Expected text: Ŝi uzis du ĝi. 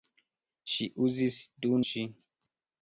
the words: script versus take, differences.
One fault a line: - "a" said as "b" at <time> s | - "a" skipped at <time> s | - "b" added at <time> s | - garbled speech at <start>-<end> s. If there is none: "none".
none